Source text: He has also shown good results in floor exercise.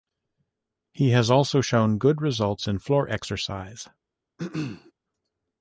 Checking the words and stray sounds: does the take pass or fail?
fail